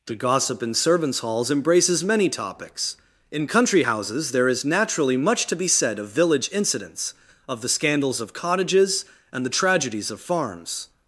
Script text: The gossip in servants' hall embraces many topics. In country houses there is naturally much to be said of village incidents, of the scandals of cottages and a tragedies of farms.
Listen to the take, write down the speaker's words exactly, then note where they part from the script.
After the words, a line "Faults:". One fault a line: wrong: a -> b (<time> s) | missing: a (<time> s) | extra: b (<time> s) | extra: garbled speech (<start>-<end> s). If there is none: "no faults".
The gossip in servants' halls embraces many topics. In country houses there is naturally much to be said of village incidents, of the scandals of cottages and the tragedies of farms.
Faults:
wrong: hall -> halls (1.2 s)
wrong: a -> the (9.4 s)